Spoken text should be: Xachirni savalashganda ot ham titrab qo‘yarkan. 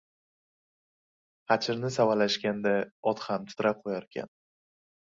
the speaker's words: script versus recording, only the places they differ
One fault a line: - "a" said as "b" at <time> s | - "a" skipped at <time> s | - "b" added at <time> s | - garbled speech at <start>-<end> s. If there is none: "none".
none